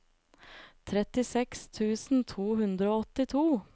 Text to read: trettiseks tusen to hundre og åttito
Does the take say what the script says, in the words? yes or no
yes